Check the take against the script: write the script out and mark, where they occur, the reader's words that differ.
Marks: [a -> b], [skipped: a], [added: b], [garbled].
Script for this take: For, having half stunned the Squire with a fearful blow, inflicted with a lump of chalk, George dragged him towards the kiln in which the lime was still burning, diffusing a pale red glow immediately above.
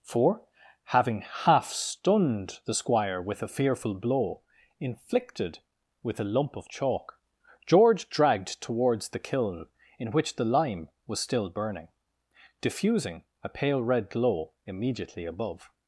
For, having half stunned the Squire with a fearful blow, inflicted with a lump of chalk, George dragged [skipped: him] towards the kiln in which the lime was still burning, diffusing a pale red glow immediately above.